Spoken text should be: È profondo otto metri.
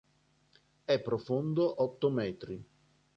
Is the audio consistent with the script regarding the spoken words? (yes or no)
yes